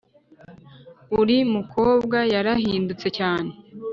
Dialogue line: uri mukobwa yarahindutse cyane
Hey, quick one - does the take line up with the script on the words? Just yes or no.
yes